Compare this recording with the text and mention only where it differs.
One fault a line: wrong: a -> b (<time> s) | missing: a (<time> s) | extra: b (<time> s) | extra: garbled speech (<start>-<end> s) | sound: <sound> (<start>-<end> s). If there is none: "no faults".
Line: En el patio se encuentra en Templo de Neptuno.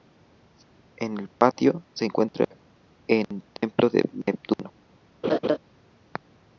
sound: laugh (5.2-5.6 s)